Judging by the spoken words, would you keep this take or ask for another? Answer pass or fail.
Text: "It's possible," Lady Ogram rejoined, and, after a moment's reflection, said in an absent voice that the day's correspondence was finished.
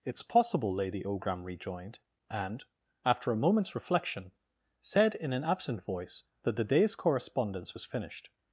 pass